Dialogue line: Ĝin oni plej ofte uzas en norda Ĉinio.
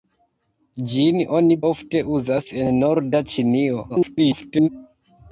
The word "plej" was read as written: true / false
false